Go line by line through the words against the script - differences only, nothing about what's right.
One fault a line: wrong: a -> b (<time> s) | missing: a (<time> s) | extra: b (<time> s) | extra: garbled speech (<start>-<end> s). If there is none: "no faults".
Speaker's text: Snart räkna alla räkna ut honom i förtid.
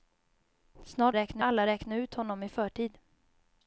no faults